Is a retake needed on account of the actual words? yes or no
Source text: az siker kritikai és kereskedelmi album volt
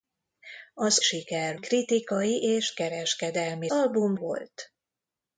no